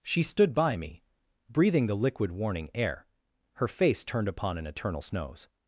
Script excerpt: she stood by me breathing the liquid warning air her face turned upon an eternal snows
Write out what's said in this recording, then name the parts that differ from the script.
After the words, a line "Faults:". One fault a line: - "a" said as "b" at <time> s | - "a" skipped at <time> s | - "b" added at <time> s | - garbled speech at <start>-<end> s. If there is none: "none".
she stood by me breathing the liquid warning air her face turned upon an eternal snows
Faults:
none